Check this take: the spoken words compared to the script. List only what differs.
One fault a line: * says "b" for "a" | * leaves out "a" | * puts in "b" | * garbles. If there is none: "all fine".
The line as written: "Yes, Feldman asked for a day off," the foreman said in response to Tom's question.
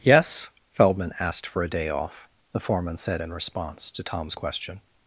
all fine